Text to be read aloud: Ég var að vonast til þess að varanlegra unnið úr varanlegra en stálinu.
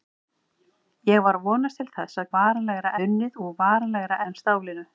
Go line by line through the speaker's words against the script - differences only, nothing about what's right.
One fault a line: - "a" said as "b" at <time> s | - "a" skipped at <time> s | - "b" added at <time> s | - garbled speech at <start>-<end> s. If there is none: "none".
none